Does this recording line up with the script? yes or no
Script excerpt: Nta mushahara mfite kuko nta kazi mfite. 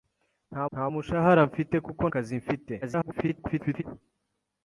no